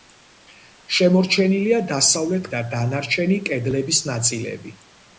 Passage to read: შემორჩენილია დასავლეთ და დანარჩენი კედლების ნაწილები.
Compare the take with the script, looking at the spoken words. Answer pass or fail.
pass